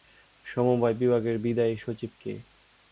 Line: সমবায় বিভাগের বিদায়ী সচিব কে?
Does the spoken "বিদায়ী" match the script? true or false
true